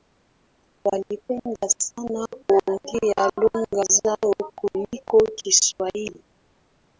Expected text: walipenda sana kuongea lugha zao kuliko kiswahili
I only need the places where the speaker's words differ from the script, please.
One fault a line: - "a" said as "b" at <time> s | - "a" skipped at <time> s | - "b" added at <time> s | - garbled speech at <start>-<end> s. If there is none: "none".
none